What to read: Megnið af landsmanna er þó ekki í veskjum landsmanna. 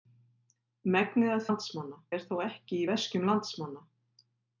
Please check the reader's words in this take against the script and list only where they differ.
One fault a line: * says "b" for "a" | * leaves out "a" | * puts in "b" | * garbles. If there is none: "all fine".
all fine